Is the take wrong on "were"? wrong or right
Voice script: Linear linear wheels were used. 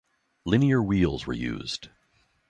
right